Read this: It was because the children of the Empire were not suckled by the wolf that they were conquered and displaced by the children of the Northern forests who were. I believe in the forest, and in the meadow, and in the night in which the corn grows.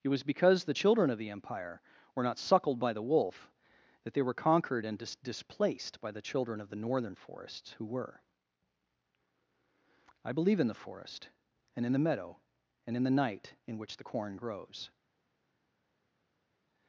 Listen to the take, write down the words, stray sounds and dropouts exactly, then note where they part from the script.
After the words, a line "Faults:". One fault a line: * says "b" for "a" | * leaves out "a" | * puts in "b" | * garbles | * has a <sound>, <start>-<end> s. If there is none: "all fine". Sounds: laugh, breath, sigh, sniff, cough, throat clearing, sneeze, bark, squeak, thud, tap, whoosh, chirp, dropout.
It was because the children of the Empire were not suckled by the wolf that they were conquered and dis displaced by the children of the Northern forests who were. I believe in the forest, and in the meadow, and in the night in which the corn grows.
Faults:
* puts in "dis"